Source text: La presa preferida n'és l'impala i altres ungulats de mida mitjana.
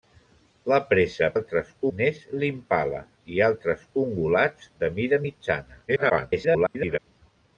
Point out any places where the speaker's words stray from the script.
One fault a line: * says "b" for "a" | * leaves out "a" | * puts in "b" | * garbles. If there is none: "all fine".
* says "altres" for "preferida"
* garbles